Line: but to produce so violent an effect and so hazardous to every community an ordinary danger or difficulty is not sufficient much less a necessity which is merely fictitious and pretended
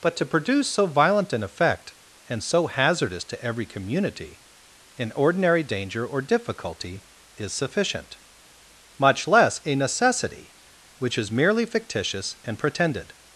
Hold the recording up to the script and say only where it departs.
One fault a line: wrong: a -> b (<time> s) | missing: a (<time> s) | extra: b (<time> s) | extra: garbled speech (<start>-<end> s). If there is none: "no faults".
missing: not (7.5 s)